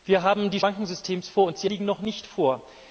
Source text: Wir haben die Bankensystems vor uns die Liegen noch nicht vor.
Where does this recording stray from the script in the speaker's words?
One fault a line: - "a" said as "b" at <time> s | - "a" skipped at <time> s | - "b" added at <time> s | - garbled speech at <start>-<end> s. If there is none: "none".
none